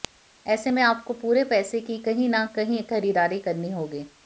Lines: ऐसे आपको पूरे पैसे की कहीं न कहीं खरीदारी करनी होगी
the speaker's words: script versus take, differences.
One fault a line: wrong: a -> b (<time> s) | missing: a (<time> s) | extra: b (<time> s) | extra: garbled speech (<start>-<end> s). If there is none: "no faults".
extra: में (0.7 s)